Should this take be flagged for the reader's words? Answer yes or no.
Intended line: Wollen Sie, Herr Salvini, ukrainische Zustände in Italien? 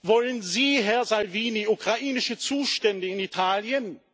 no